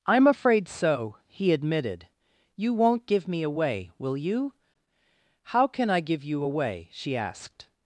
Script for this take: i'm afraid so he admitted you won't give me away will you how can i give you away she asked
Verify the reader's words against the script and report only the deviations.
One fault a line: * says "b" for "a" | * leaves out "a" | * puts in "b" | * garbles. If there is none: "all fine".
all fine